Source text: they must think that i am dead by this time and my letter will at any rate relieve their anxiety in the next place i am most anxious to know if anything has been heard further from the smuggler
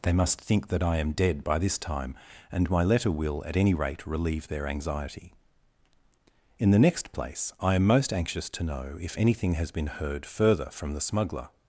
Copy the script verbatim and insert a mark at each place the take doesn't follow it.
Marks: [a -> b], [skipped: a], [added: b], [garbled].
they must think that i am dead by this time and my letter will at any rate relieve their anxiety in the next place i am most anxious to know if anything has been heard further from the smuggler